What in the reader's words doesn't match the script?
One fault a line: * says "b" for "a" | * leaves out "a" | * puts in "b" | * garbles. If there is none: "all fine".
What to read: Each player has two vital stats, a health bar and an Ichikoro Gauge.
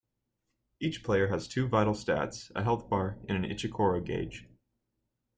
all fine